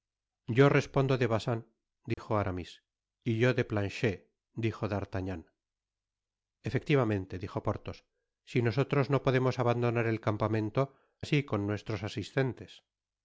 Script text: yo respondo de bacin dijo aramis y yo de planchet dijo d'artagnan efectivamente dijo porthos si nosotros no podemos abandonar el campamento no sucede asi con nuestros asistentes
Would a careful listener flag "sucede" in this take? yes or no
yes